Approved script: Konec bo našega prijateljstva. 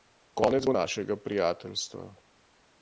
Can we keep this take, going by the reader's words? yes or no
yes